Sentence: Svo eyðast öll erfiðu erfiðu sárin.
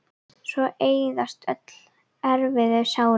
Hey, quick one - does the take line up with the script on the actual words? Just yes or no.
no